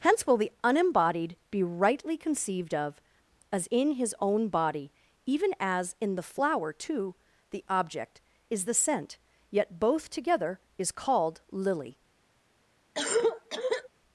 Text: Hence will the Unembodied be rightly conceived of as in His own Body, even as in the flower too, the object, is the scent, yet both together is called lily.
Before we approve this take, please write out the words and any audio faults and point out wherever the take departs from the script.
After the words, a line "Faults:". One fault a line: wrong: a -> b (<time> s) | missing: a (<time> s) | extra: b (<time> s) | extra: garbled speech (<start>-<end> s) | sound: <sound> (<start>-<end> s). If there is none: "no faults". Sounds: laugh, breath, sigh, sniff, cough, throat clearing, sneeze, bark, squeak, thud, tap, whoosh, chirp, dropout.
Hence will the Unembodied be rightly conceived of as in His own Body, even as in the flower too, the object, is the scent, yet both together is called lily.
Faults:
sound: cough (12.9-13.9 s)